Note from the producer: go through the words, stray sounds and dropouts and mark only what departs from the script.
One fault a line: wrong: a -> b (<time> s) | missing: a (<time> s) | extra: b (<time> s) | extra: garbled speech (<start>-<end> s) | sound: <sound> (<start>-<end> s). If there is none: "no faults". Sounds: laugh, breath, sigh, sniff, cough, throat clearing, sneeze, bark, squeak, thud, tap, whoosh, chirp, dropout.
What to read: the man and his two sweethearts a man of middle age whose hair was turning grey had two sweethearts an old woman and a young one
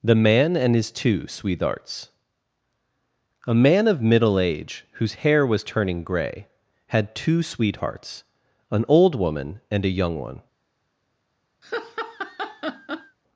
sound: laugh (11.6-13.2 s)